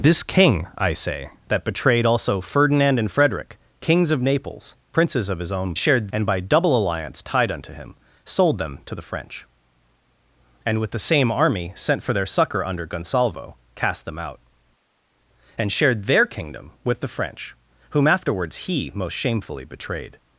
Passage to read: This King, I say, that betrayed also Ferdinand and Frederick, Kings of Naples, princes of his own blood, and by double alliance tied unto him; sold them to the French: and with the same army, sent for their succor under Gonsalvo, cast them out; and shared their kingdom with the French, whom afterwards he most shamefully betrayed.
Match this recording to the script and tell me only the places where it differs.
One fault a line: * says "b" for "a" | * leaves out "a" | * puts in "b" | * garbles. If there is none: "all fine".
* says "shared" for "blood"